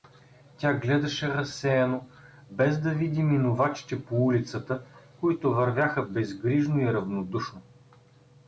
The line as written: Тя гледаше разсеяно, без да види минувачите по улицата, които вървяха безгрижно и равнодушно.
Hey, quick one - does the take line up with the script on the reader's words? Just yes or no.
yes